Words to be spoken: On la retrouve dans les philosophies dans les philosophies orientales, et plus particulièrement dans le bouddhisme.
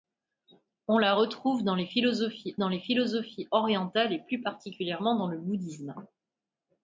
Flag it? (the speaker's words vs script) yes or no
no